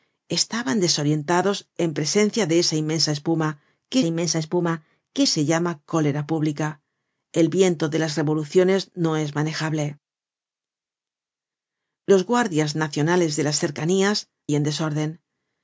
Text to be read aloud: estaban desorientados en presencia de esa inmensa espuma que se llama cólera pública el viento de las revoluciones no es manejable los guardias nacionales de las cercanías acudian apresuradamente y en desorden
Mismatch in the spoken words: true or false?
true